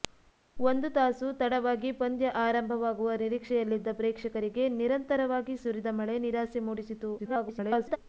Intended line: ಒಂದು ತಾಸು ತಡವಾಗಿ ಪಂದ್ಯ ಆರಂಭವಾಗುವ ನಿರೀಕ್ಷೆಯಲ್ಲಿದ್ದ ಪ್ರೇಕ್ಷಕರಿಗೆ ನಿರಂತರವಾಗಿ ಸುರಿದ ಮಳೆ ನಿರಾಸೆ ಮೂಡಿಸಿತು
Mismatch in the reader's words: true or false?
true